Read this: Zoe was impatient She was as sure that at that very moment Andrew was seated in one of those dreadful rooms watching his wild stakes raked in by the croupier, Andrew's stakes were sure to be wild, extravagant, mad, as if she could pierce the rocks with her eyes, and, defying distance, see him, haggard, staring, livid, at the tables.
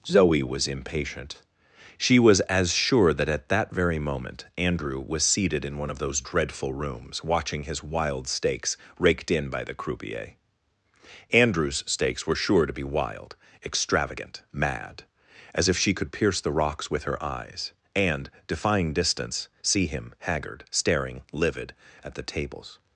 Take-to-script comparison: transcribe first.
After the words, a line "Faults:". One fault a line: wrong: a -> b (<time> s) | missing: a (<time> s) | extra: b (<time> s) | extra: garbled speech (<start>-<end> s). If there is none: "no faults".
Zoe was impatient She was as sure that at that very moment Andrew was seated in one of those dreadful rooms watching his wild stakes raked in by the croupier, Andrew's stakes were sure to be wild, extravagant, mad, as if she could pierce the rocks with her eyes, and, defying distance, see him, haggard, staring, livid, at the tables.
Faults:
no faults